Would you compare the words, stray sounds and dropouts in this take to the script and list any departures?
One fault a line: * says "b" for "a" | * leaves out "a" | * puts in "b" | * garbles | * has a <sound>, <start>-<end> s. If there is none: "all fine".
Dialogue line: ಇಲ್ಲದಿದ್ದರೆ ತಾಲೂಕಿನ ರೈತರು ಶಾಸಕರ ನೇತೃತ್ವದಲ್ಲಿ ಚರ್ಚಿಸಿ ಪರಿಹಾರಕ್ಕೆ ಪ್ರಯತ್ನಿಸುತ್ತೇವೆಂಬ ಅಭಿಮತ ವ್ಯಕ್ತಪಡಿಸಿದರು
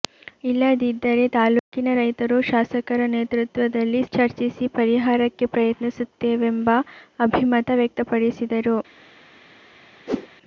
* has a dropout, 1.6-1.7 s
* has a whoosh, 10.1-10.3 s